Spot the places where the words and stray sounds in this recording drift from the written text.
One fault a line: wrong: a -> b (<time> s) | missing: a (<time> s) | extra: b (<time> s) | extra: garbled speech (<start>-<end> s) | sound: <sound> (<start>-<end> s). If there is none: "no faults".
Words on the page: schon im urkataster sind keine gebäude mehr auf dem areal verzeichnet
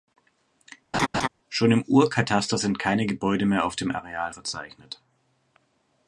sound: laugh (0.9-1.3 s)